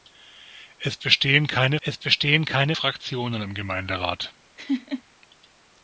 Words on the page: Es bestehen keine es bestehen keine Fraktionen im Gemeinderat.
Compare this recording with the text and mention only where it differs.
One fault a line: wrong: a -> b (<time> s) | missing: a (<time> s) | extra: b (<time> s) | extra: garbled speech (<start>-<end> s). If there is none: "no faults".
no faults